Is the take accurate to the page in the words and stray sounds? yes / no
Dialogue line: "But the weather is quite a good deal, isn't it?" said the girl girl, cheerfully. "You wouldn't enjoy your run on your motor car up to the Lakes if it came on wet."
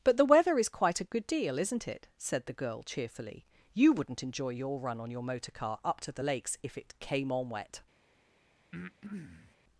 no